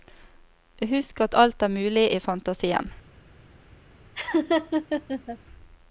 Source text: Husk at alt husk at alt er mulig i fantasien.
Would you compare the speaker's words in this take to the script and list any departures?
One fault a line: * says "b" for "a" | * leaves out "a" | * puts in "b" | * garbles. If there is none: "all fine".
* leaves out "husk at alt"